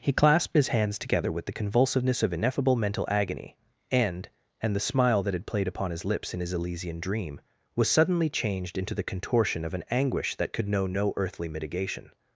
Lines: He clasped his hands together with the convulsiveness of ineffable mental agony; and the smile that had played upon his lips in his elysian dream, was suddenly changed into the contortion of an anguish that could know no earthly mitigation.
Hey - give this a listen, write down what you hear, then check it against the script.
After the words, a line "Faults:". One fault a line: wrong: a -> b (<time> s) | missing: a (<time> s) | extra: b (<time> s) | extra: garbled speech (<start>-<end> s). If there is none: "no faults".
He clasped his hands together with the convulsiveness of ineffable mental agony; and and the smile that had played upon his lips in his elysian dream, was suddenly changed into the contortion of an anguish that could know no earthly mitigation.
Faults:
extra: and (4.6 s)